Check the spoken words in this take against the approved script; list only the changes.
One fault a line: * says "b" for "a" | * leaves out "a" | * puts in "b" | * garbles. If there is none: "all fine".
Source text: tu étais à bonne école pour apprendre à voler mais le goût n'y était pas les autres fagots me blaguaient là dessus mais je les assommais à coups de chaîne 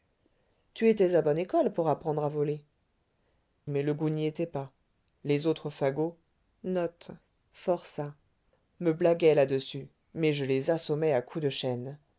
all fine